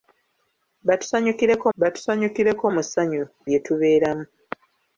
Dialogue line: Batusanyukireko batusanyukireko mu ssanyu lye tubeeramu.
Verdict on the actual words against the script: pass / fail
pass